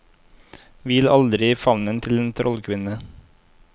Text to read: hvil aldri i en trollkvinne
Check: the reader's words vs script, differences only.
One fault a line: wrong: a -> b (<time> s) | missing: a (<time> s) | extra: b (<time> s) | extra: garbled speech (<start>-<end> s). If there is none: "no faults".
extra: favnen til (1.6 s)